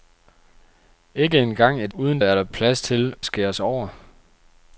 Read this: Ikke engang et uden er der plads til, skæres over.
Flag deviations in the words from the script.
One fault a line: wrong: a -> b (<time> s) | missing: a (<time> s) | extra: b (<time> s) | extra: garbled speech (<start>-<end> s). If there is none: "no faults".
no faults